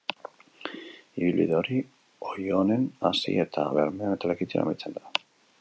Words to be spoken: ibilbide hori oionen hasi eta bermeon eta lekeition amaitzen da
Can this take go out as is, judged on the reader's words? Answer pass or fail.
pass